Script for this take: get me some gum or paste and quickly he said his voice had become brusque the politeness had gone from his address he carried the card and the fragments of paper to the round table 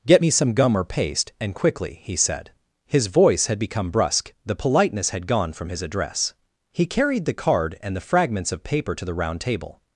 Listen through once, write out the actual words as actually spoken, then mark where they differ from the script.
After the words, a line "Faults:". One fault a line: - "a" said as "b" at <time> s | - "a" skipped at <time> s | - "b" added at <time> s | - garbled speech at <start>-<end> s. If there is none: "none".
get me some gum or paste and quickly he said his voice had become brusque the politeness had gone from his address he carried the card and the fragments of paper to the round table
Faults:
none